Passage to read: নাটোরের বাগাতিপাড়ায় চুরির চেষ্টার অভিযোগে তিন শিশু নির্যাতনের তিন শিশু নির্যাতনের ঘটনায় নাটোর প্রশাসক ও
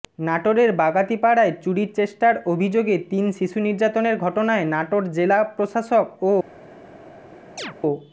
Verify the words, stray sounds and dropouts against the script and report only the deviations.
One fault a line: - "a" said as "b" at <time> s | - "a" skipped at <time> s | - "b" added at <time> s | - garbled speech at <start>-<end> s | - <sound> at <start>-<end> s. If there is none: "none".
- "তিন শিশু নির্যাতনের" skipped at 4.2 s
- "জেলা" added at 5.1 s
- chirp at 7.6-7.7 s